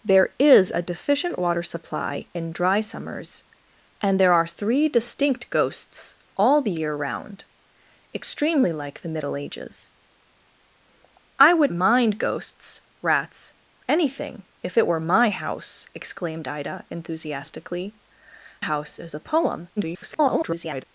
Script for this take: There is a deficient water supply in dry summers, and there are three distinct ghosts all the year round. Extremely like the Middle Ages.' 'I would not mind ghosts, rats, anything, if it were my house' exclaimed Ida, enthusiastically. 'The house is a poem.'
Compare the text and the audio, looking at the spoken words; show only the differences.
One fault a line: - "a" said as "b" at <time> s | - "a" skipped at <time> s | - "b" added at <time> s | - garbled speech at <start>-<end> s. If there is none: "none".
- "not" skipped at 11.7 s
- "The" skipped at 18.0 s
- garbled speech at 19.8-20.8 s